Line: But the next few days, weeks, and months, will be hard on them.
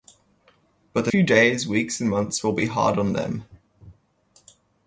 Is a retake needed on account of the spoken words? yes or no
yes